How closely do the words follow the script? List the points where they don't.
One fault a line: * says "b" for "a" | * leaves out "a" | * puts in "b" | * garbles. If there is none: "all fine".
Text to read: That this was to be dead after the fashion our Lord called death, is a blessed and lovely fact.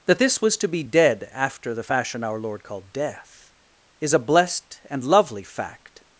all fine